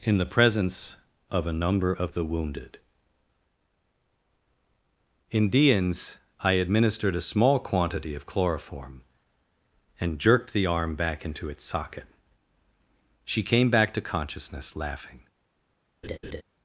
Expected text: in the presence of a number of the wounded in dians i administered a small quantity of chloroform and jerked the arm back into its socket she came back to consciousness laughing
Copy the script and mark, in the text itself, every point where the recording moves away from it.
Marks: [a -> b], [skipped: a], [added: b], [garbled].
in the presence of a number of the wounded in dians i administered a small quantity of chloroform and jerked the arm back into its socket she came back to consciousness laughing